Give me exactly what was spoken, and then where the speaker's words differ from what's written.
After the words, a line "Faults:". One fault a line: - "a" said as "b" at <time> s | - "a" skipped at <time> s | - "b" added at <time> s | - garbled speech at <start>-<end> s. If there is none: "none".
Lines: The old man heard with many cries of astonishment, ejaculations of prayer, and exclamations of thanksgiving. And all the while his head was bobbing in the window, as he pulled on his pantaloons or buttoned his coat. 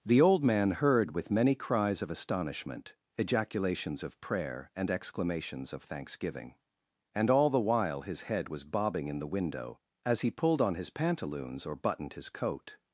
The old man heard with many cries of astonishment, ejaculations of prayer, and exclamations of thanksgiving. And all the while his head was bobbing in the window, as he pulled on his pantaloons or buttoned his coat.
Faults:
none